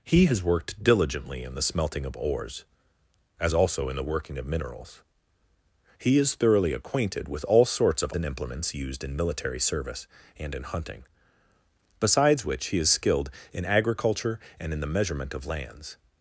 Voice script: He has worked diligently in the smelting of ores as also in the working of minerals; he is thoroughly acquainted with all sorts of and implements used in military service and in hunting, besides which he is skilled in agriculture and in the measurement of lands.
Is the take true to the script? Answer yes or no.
yes